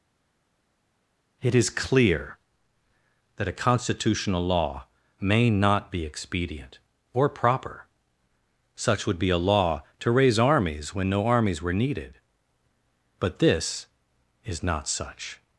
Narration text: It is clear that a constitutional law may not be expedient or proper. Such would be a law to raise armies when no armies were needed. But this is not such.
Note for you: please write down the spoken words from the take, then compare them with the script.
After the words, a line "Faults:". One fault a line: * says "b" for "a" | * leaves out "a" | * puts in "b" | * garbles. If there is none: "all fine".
It is clear that a constitutional law may not be expedient or proper. Such would be a law to raise armies when no armies were needed. But this is not such.
Faults:
all fine